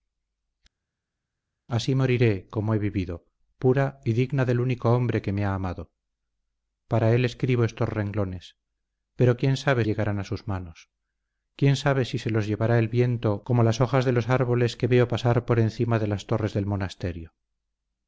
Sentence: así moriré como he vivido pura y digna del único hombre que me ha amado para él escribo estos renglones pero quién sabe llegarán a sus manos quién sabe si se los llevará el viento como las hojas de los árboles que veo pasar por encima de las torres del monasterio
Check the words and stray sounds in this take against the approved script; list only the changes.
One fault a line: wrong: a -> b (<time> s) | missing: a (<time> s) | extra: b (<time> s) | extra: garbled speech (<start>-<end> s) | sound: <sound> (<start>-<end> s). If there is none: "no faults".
no faults